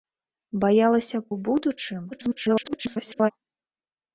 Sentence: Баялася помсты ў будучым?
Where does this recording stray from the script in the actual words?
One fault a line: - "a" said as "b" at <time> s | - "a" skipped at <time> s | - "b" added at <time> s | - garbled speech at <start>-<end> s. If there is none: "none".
- "помсты" skipped at 1.2 s
- garbled speech at 2.1-3.3 s